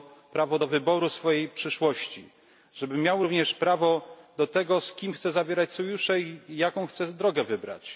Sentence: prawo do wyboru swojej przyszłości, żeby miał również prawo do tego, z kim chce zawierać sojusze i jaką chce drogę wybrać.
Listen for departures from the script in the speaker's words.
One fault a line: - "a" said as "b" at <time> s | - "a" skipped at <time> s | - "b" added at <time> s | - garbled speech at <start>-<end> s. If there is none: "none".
none